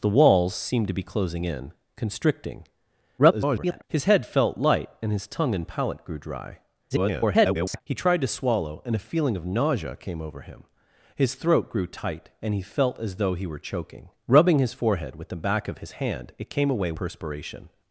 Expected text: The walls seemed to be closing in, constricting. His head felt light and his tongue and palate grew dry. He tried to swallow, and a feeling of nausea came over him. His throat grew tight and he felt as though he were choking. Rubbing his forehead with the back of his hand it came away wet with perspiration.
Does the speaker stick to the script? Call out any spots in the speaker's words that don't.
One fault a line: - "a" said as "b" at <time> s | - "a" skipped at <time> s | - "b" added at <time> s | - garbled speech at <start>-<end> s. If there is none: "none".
- garbled speech at 3.2-3.8 s
- garbled speech at 6.9-7.8 s
- "wet with" skipped at 16.9 s